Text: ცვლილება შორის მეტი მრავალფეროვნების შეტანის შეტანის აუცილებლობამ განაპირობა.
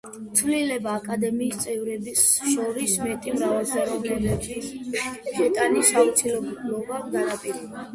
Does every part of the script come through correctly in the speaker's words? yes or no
no